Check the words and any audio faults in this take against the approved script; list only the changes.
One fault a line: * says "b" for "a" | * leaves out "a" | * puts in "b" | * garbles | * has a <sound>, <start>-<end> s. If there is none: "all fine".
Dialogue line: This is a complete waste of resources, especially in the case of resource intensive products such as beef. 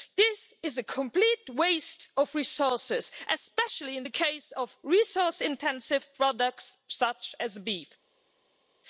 all fine